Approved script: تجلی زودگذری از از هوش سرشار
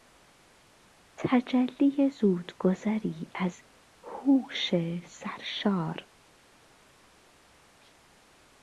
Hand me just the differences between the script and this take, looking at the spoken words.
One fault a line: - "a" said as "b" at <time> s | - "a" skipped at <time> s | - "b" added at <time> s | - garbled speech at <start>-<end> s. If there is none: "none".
- "از" skipped at 3.6 s